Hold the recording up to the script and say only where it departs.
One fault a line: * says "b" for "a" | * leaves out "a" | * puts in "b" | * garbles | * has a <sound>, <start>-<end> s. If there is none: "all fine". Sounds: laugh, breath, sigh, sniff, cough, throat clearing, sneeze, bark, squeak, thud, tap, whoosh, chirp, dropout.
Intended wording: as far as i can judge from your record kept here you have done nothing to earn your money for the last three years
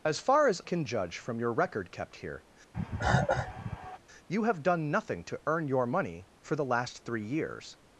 * leaves out "i"
* has a cough, 2.7-4.0 s